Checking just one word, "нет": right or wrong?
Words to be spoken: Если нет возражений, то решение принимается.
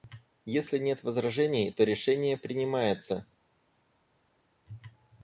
right